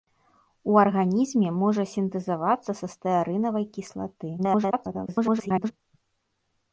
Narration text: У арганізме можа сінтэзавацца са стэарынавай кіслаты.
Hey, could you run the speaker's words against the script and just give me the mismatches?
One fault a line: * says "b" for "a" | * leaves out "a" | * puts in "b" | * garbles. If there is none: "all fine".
* garbles